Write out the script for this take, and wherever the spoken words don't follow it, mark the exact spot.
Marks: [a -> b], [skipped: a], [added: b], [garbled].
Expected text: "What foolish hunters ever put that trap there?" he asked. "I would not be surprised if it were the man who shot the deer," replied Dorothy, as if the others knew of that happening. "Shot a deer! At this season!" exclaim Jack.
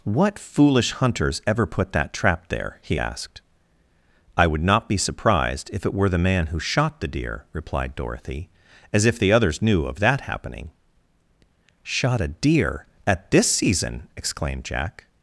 "What foolish hunters ever put that trap there?" he asked. "I would not be surprised if it were the man who shot the deer," replied Dorothy, as if the others knew of that happening. "Shot a deer! At this season!" [exclaim -> exclaimed] Jack.